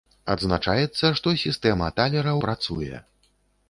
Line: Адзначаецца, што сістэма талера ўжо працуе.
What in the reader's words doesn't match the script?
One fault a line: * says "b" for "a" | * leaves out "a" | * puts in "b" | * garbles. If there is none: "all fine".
* leaves out "ўжо"